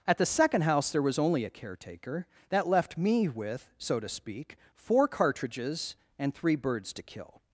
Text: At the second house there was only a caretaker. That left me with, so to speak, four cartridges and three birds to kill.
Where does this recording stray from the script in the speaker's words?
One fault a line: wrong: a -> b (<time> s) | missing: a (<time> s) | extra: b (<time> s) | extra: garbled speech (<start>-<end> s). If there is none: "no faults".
no faults